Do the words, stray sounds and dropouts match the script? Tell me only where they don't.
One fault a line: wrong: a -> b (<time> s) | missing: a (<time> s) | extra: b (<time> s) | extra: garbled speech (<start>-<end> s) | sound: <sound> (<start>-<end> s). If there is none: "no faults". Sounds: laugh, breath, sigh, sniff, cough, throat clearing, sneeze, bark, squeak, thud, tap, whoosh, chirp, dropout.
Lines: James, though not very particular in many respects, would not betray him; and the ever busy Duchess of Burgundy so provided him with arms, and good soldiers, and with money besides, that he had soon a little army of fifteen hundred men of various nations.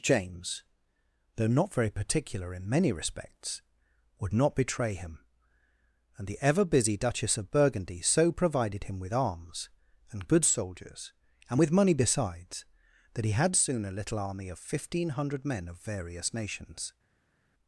no faults